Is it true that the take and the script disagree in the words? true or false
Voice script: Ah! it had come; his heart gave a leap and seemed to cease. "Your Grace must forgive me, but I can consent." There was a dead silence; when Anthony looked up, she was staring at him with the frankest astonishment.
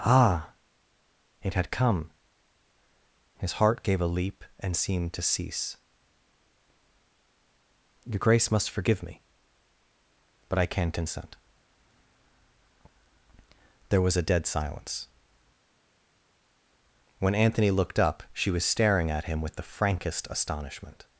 false